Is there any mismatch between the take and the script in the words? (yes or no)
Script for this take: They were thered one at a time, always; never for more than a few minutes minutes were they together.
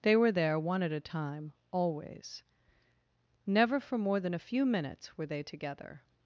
yes